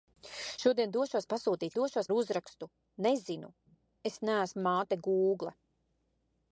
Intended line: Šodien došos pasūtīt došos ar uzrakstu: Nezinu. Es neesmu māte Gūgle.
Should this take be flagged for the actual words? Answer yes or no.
no